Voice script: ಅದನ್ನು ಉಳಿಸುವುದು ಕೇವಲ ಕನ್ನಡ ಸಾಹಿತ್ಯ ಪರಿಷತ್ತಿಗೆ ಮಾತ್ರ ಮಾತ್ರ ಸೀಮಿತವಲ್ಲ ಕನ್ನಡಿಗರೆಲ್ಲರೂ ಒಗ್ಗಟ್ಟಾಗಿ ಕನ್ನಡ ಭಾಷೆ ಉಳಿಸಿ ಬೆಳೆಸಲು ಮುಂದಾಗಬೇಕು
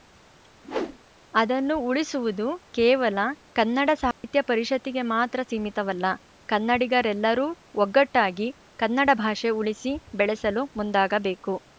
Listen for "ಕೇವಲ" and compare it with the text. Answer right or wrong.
right